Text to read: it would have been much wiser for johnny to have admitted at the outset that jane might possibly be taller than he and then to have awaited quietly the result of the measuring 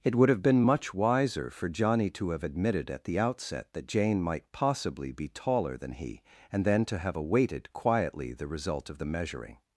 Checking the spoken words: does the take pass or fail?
pass